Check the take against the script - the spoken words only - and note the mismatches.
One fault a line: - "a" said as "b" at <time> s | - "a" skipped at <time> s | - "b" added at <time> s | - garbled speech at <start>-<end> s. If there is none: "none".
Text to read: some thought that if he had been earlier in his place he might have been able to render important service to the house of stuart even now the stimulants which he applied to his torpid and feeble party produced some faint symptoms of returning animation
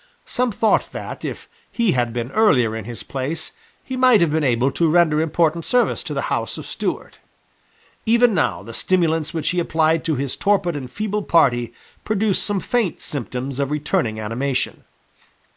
none